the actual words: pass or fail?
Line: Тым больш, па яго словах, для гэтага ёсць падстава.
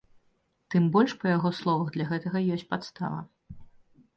pass